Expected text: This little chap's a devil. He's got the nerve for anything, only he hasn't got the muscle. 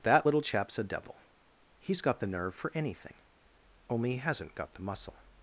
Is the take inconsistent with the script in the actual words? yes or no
yes